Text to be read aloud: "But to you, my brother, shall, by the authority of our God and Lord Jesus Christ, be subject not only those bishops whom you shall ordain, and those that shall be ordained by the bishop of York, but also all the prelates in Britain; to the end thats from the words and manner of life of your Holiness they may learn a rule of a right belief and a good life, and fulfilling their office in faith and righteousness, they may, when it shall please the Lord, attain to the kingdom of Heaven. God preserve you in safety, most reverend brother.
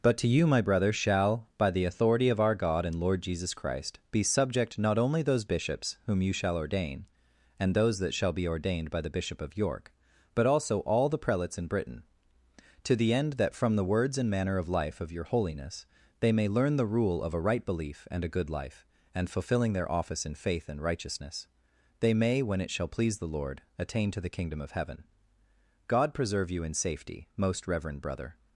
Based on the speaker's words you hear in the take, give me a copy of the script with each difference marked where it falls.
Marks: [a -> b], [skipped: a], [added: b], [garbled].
"But to you, my brother, shall, by the authority of our God and Lord Jesus Christ, be subject not only those bishops whom you shall ordain, and those that shall be ordained by the bishop of York, but also all the prelates in Britain; to the end [thats -> that] from the words and manner of life of your Holiness they may learn [a -> the] rule of a right belief and a good life, and fulfilling their office in faith and righteousness, they may, when it shall please the Lord, attain to the kingdom of Heaven. God preserve you in safety, most reverend brother.